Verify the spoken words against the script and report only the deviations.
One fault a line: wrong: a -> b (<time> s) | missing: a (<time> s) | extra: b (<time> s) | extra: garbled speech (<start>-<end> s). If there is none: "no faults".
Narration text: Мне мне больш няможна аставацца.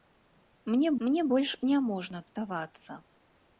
no faults